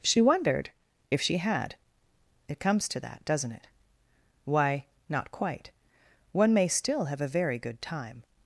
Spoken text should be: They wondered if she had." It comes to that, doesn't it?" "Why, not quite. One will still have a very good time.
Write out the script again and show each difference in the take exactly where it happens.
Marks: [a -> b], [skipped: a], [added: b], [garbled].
[They -> She] wondered if she had." It comes to that, doesn't it?" "Why, not quite. One [will -> may] still have a very good time.